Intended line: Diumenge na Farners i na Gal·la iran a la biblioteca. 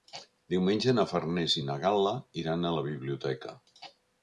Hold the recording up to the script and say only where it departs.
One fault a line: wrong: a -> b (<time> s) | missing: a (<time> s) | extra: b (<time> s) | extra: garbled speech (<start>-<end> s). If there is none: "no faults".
no faults